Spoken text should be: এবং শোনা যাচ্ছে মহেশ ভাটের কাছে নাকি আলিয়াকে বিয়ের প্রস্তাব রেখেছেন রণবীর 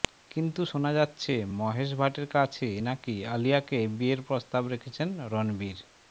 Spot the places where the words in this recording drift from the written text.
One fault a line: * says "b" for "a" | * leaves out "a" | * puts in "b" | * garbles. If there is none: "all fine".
* says "কিন্তু" for "এবং"